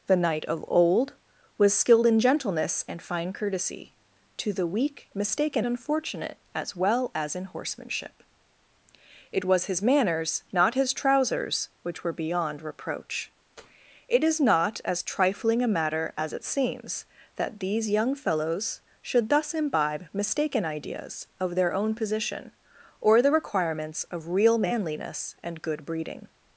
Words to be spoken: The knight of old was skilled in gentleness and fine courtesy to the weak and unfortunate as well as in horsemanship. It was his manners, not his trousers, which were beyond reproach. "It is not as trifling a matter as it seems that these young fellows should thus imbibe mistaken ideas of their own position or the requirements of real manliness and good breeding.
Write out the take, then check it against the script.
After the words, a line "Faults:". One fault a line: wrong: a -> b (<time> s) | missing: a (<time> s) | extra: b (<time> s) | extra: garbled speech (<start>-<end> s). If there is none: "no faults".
The knight of old was skilled in gentleness and fine courtesy to the weak mistaken unfortunate as well as in horsemanship. It was his manners, not his trousers, which were beyond reproach. "It is not as trifling a matter as it seems that these young fellows should thus imbibe mistaken ideas of their own position or the requirements of real manliness and good breeding.
Faults:
wrong: and -> mistaken (5.1 s)